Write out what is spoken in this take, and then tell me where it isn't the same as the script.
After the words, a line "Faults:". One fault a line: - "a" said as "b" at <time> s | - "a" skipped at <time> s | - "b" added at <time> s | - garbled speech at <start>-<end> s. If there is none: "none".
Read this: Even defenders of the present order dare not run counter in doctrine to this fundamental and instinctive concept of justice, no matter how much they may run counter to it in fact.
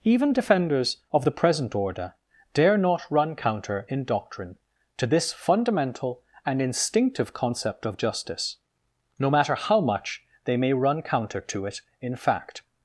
Even defenders of the present order dare not run counter in doctrine to this fundamental and instinctive concept of justice, no matter how much they may run counter to it in fact.
Faults:
none